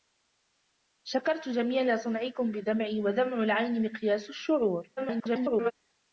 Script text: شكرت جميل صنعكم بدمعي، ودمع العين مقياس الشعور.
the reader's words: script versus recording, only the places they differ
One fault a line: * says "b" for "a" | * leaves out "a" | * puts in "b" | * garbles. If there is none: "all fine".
* garbles